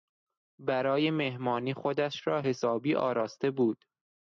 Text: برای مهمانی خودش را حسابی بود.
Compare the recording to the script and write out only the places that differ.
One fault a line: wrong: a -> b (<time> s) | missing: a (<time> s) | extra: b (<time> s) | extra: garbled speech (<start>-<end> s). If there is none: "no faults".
extra: آراسته (2.9 s)